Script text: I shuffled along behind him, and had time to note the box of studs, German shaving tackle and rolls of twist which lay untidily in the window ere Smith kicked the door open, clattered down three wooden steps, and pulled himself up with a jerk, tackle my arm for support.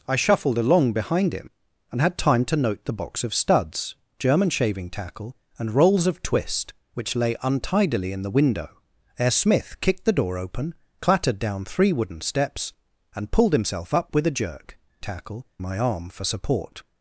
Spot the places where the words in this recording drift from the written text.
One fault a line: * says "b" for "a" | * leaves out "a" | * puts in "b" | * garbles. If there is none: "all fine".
all fine